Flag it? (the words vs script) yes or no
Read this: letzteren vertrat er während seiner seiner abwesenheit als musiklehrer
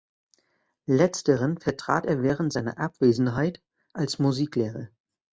yes